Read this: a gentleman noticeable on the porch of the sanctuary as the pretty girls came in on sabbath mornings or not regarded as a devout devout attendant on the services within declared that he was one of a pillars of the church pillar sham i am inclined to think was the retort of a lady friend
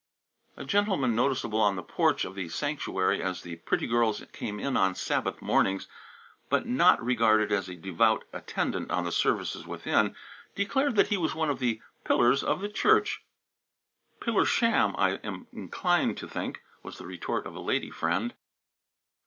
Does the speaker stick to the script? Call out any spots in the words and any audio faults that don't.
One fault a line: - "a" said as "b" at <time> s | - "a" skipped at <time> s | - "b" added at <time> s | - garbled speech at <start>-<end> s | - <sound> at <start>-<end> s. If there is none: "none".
- "or" said as "but" at 6.5 s
- "devout" skipped at 8.2 s
- "a" said as "the" at 11.6 s